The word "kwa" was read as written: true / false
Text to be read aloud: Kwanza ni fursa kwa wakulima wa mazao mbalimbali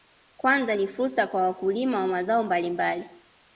true